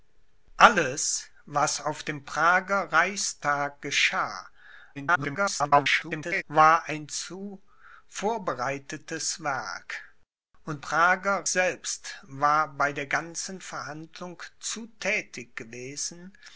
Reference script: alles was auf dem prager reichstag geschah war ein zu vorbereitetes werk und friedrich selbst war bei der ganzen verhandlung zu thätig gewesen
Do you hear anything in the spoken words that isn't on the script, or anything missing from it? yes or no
yes